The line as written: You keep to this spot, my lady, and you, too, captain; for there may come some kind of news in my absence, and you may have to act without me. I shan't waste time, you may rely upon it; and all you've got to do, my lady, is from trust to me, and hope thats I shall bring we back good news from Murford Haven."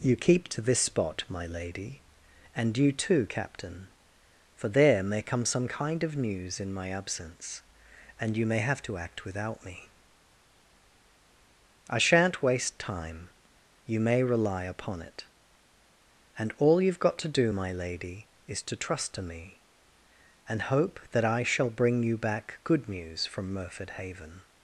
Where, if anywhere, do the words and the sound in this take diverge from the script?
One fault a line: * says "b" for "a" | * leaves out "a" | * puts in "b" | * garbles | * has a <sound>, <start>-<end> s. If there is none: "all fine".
* says "to" for "from"
* says "that" for "thats"
* says "you" for "we"